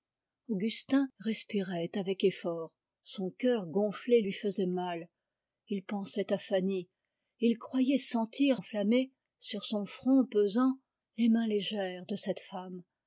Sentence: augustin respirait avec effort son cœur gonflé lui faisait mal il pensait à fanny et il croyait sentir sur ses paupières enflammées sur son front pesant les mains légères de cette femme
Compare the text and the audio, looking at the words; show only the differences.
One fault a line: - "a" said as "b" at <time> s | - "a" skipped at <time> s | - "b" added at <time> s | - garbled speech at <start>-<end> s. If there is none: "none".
- "sur ses paupières" skipped at 8.6 s